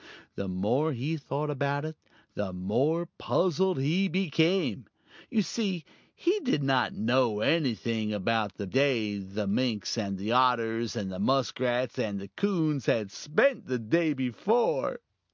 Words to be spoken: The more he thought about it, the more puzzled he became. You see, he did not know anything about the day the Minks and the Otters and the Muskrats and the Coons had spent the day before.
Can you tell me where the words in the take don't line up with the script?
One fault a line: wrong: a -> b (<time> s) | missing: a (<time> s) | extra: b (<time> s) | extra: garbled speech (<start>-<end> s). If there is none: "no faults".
no faults